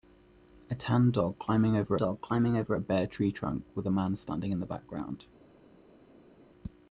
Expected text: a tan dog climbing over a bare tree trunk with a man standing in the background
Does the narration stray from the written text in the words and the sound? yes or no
yes